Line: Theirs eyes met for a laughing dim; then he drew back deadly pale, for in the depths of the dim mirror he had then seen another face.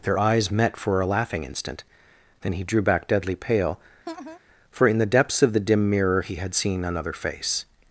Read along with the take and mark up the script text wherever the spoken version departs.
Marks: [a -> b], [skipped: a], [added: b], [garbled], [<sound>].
[Theirs -> Their] eyes met for a laughing [dim; -> instant] then he drew back deadly pale, [laugh] for in the depths of the dim mirror he had [skipped: then] seen another face.